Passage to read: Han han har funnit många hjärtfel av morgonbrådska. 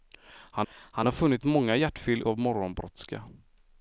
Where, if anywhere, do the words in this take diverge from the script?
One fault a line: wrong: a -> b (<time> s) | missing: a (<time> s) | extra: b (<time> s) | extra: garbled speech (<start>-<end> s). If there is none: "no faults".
no faults